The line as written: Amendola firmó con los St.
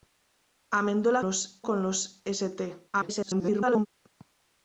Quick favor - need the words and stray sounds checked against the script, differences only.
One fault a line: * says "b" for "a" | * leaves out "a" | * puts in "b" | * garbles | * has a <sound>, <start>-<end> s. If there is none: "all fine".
* says "los" for "firmó"
* garbles